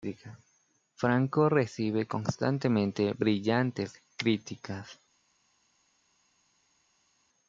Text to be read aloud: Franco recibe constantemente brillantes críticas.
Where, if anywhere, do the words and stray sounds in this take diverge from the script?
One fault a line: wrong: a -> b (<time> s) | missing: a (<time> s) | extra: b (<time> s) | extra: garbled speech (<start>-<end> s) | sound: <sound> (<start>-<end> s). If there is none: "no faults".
no faults